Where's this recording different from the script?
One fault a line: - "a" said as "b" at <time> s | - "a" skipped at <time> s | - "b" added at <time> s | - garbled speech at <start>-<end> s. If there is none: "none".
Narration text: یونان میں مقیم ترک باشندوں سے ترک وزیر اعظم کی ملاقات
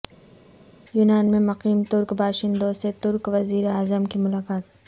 none